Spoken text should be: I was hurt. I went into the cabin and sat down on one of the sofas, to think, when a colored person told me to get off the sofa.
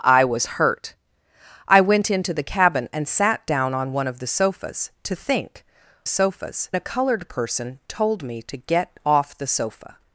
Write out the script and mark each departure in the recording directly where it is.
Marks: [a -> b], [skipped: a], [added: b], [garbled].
I was hurt. I went into the cabin and sat down on one of the sofas, to think, [when -> sofas] a colored person told me to get off the sofa.